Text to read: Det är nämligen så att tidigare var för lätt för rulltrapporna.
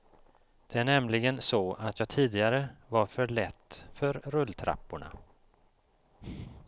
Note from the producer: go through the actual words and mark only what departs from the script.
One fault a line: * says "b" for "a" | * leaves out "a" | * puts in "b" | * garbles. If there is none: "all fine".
* puts in "jag"